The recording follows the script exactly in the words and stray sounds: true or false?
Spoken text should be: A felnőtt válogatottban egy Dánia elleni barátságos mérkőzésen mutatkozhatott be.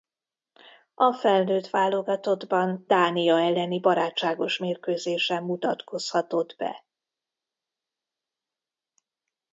false